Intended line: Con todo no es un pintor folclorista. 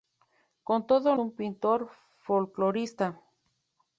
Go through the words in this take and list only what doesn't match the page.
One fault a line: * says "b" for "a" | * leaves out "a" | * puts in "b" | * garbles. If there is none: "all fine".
* leaves out "no es"